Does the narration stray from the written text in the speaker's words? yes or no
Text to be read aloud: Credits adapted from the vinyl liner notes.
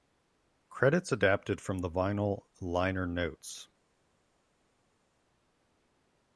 no